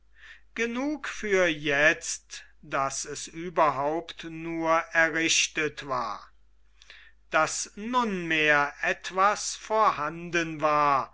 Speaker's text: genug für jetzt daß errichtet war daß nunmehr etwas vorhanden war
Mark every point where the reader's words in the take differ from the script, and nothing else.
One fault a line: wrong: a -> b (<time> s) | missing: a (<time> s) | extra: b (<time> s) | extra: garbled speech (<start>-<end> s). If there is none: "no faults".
extra: es überhaupt nur (3.0 s)